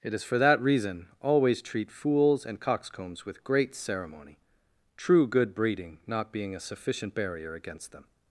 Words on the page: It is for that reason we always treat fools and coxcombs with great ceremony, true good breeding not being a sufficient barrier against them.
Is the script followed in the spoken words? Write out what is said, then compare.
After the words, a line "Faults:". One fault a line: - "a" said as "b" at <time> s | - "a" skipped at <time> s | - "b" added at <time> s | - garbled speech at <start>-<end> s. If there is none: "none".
It is for that reason always treat fools and coxcombs with great ceremony, true good breeding not being a sufficient barrier against them.
Faults:
- "we" skipped at 1.1 s